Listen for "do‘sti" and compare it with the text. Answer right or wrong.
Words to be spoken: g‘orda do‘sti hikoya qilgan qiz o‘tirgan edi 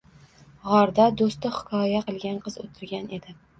right